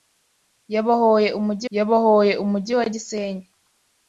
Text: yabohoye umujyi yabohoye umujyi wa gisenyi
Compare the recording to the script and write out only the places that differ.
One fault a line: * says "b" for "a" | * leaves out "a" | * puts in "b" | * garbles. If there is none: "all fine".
all fine